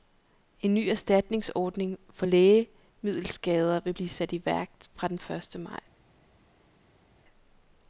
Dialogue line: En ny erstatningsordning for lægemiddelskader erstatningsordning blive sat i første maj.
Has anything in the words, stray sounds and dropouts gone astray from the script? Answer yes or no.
yes